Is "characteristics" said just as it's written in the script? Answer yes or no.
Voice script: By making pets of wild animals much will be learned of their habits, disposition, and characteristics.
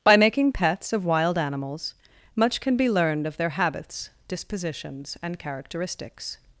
yes